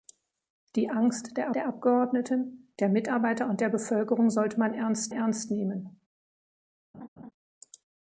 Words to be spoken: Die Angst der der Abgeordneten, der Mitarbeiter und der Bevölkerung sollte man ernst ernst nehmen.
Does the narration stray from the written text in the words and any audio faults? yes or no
yes